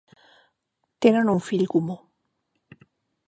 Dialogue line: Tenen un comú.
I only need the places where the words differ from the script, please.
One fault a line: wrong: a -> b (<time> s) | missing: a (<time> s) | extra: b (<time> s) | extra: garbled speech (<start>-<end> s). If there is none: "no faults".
extra: fill (1.5 s)